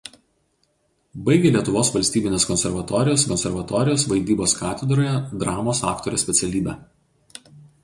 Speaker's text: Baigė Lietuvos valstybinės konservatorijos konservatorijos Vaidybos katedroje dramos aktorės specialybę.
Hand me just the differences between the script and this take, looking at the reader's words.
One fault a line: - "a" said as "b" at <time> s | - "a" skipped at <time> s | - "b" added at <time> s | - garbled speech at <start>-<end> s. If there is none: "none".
none